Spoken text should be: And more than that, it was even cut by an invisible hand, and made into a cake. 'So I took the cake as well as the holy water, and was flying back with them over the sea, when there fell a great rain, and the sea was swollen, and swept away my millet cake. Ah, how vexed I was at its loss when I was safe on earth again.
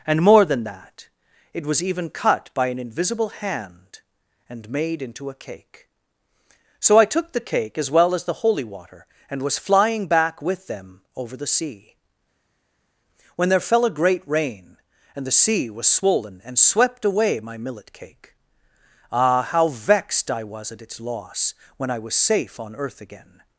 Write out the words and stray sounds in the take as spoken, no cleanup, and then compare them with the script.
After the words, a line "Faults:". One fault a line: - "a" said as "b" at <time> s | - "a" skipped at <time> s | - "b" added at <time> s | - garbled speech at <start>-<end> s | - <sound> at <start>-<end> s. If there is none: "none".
And more than that, it was even cut by an invisible hand, and made into a cake. 'So I took the cake as well as the holy water, and was flying back with them over the sea, when there fell a great rain, and the sea was swollen, and swept away my millet cake. Ah, how vexed I was at its loss when I was safe on earth again.
Faults:
none